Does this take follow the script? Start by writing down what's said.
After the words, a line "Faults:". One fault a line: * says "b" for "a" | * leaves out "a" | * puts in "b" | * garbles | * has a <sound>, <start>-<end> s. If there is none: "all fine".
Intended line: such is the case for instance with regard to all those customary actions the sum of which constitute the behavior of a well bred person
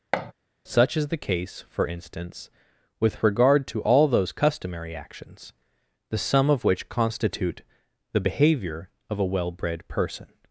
such is the case for instance with regard to all those customary actions the sum of which constitute the behavior of a well bred person
Faults:
* has a thud, 0.1-0.3 s